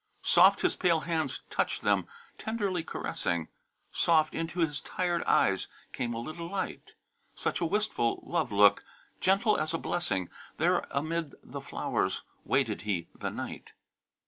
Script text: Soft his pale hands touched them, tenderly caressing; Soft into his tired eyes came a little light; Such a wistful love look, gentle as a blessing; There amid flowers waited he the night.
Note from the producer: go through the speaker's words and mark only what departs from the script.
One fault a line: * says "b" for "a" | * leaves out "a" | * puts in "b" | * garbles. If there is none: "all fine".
* puts in "the"